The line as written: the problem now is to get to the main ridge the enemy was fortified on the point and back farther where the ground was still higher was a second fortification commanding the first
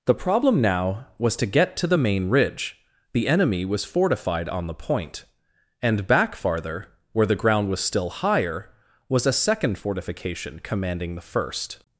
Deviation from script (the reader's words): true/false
true